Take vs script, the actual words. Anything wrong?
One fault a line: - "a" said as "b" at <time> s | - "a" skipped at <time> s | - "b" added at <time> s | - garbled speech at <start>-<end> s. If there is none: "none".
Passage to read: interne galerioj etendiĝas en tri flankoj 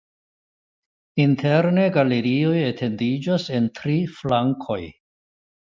none